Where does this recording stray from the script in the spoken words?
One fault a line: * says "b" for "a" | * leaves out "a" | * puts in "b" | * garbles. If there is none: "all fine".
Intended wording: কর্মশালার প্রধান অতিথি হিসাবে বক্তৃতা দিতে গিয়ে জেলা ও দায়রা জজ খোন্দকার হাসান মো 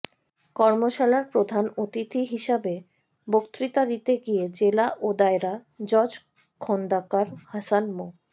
all fine